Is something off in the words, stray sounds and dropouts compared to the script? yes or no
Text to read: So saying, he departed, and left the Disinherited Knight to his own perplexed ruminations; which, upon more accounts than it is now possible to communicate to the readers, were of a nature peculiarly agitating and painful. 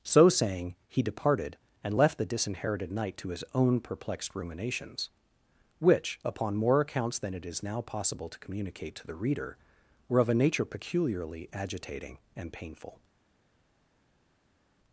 yes